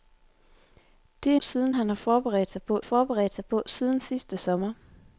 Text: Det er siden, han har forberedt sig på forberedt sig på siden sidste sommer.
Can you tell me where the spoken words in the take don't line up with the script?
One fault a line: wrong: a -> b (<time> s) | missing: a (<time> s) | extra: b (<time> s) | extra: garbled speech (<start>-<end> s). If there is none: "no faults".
no faults